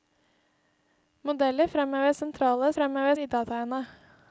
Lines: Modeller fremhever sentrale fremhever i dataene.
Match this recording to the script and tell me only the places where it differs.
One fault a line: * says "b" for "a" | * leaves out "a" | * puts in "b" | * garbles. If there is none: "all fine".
all fine